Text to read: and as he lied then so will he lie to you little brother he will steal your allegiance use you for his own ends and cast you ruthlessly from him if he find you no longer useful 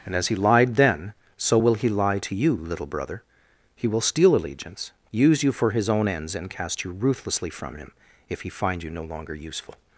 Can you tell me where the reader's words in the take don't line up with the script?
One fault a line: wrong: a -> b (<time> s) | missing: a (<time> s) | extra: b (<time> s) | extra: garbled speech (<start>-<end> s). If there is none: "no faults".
missing: your (4.3 s)